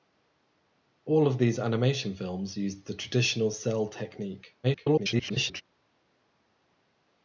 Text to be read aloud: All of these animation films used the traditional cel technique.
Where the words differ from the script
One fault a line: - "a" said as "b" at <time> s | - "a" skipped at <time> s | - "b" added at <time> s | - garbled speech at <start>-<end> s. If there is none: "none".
- garbled speech at 4.6-5.6 s